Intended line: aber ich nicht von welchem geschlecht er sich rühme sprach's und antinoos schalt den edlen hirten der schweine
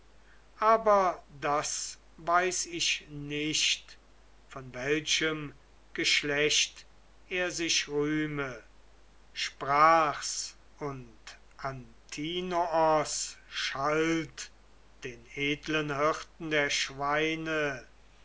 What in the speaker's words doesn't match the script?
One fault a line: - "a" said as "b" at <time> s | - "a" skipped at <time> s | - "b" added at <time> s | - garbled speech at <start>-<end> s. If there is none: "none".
- "das weiß" added at 1.3 s